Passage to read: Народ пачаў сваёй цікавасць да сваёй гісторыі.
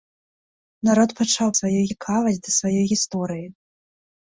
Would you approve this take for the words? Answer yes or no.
yes